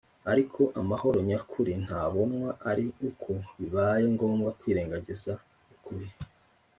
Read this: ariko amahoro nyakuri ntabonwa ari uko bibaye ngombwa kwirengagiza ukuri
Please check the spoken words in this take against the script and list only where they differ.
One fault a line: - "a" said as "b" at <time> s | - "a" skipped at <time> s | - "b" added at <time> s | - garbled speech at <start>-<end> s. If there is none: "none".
none